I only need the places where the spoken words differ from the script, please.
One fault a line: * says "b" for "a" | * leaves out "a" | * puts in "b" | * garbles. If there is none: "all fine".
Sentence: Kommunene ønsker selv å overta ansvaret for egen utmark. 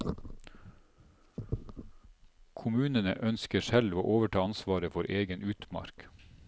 all fine